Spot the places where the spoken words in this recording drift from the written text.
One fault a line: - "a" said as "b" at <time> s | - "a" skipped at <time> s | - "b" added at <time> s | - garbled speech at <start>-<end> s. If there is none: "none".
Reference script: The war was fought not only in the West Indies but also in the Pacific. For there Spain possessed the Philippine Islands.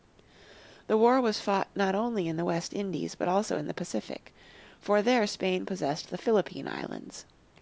none